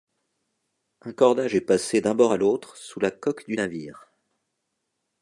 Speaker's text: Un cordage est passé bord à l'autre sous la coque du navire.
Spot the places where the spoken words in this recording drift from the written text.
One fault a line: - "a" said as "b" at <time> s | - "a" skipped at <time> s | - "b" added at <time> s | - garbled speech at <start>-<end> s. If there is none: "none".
- "d'un" added at 2.0 s